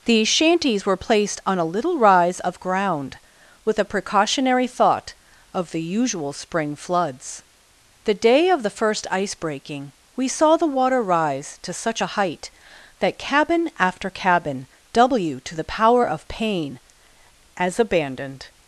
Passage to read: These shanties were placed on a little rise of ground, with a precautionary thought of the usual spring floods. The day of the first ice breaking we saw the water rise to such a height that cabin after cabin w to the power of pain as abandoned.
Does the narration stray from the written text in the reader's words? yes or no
no